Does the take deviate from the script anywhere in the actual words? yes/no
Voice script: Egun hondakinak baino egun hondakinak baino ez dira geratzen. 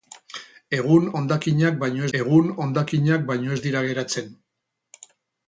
no